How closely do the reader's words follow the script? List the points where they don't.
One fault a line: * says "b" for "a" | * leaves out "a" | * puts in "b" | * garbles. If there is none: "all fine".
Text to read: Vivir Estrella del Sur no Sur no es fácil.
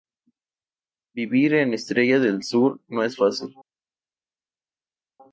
* puts in "en"
* leaves out "Sur no"